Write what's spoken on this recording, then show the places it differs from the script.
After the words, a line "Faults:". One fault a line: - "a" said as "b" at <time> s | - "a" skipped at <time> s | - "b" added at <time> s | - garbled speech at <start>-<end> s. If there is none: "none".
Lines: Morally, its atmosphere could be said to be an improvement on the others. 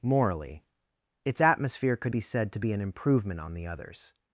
Morally, its atmosphere could be said to be an improvement on the others.
Faults:
none